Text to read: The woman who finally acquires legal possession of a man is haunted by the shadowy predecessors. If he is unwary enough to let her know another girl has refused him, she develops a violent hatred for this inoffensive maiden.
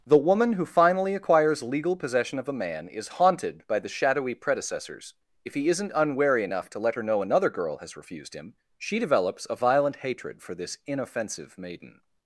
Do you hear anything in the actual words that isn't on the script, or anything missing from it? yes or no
yes